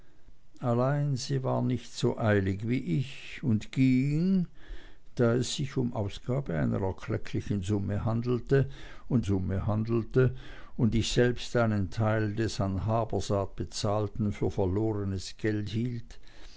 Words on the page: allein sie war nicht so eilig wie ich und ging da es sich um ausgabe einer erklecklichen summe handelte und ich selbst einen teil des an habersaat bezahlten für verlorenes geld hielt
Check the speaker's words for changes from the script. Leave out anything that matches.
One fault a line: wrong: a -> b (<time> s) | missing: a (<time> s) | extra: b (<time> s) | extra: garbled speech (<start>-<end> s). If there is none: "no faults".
extra: summe handelte und (9.2 s)